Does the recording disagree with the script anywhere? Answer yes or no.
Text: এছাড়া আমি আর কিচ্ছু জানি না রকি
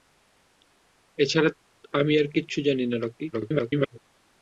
yes